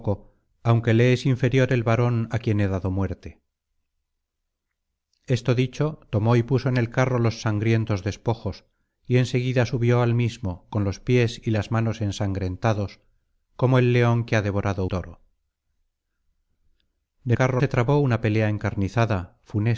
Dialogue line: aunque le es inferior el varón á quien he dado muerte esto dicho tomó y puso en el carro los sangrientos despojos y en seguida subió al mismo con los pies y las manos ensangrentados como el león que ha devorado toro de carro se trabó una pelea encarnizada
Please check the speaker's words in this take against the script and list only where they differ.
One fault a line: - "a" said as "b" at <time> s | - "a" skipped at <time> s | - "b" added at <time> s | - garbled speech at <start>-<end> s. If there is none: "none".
none